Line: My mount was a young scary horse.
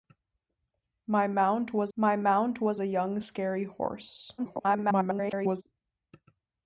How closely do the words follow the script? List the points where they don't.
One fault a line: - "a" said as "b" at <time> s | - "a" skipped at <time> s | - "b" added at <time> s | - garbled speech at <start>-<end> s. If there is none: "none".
- "my mount was" added at 1.9 s
- garbled speech at 4.4-5.6 s